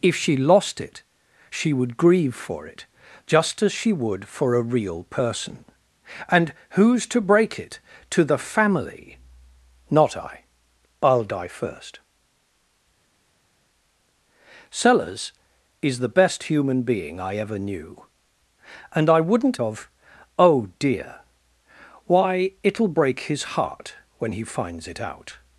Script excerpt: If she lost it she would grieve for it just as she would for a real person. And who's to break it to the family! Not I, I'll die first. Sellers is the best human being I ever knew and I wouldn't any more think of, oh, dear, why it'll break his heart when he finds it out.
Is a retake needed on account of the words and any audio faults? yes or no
yes